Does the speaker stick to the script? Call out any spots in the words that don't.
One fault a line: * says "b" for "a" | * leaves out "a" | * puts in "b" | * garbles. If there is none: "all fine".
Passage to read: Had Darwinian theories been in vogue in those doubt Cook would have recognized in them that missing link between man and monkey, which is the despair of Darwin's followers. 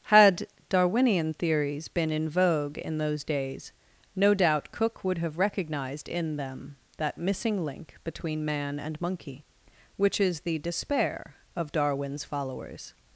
* puts in "days no"